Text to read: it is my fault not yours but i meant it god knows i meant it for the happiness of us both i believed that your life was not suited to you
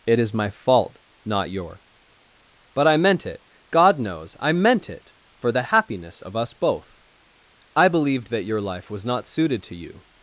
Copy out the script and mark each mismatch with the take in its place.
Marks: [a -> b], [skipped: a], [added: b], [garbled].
it is my fault not [yours -> your] but i meant it god knows i meant it for the happiness of us both i believed that your life was not suited to you